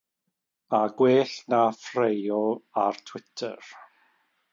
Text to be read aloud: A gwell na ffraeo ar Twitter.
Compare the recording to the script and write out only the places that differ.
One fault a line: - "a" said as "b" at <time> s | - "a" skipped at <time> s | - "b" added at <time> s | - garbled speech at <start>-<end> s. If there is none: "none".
none